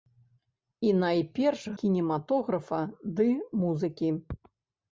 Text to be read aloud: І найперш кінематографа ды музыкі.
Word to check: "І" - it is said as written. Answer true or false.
true